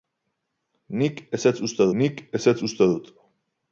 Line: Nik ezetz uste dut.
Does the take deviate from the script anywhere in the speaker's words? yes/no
yes